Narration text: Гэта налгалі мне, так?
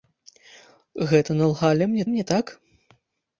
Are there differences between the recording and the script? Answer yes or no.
yes